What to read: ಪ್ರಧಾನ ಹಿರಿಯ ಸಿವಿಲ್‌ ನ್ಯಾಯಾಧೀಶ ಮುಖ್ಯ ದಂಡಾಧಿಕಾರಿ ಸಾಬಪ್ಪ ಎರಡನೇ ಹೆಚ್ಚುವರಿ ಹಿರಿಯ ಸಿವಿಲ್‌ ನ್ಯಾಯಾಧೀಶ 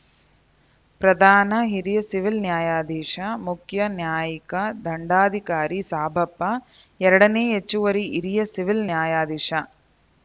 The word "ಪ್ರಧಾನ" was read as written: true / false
true